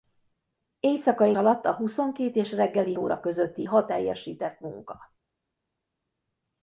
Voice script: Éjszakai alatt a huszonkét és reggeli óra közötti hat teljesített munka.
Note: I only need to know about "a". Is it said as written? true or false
true